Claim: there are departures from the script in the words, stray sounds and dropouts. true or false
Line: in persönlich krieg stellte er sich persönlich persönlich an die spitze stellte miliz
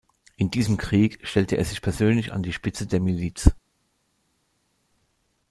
true